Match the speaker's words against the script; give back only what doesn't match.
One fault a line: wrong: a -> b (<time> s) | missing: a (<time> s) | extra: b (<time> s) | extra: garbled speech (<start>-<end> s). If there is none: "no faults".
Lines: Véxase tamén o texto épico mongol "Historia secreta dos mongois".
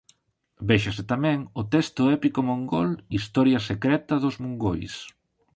no faults